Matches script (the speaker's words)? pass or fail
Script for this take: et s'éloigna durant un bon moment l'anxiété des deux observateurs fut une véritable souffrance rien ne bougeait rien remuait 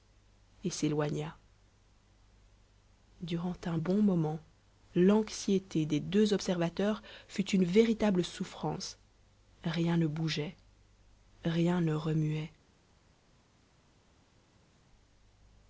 fail